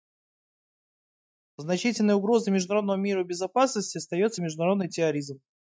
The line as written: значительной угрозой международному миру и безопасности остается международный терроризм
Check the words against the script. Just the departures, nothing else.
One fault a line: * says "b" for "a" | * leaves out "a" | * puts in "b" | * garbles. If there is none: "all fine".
all fine